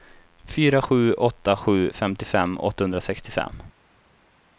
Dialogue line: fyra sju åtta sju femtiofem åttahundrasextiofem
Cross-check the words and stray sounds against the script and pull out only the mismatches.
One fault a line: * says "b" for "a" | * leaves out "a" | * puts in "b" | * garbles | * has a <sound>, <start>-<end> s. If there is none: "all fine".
all fine